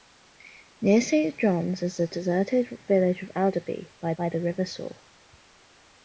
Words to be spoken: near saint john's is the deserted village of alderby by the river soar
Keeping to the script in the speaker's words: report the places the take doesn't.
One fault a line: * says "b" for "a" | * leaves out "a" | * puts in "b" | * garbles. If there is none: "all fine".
* puts in "by"